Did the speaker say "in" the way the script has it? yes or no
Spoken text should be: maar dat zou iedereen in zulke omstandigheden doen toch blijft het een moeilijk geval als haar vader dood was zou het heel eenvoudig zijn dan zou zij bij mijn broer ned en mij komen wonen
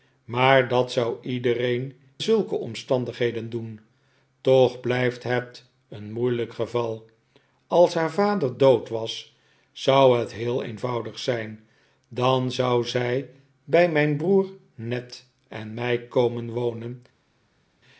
no